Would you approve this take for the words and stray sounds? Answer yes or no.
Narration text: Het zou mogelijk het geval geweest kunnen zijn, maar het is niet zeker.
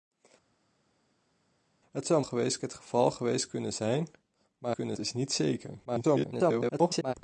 no